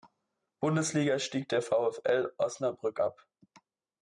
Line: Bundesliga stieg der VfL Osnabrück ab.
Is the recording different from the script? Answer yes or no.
no